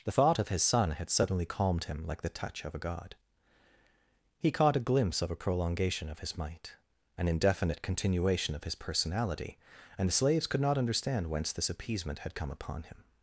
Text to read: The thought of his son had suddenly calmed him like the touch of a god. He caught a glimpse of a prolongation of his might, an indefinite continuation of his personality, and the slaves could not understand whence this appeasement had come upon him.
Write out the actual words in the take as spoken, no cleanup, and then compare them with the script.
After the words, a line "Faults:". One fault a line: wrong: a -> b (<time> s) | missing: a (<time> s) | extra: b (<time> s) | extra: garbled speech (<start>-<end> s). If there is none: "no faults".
The thought of his son had suddenly calmed him like the touch of a god. He caught a glimpse of a prolongation of his might, an indefinite continuation of his personality, and the slaves could not understand whence this appeasement had come upon him.
Faults:
no faults